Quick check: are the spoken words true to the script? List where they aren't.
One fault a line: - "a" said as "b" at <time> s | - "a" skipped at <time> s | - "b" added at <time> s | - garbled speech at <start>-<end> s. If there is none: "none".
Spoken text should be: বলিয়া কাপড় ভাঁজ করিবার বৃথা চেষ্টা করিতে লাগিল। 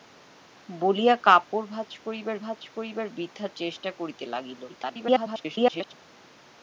- "ভাঁজ করিবার" added at 2.4 s
- garbled speech at 4.7-5.9 s